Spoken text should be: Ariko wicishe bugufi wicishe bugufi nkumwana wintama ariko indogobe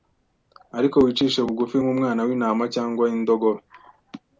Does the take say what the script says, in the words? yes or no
no